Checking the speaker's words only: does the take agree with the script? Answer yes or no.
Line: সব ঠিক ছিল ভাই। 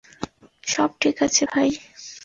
no